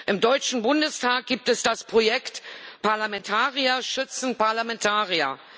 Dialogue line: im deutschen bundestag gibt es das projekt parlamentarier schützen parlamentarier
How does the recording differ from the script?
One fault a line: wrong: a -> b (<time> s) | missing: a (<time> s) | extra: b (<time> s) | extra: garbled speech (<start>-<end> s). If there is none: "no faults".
no faults